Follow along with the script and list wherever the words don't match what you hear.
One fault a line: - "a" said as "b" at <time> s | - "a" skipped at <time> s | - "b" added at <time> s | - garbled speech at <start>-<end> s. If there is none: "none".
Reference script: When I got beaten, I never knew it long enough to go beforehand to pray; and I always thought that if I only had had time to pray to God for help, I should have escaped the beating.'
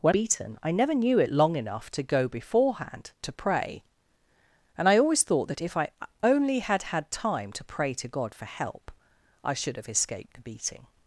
- "I got" skipped at 0.1 s